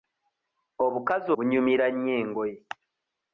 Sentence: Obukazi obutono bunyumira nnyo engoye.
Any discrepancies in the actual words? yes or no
yes